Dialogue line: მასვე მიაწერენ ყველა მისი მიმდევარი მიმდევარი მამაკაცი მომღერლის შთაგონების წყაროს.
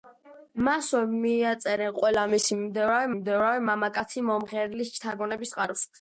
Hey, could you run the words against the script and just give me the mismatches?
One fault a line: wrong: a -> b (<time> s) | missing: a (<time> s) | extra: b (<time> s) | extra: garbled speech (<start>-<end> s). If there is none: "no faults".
no faults